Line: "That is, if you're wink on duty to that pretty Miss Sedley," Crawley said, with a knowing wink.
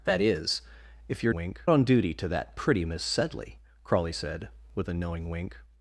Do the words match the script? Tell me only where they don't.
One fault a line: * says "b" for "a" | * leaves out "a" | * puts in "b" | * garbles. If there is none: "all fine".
all fine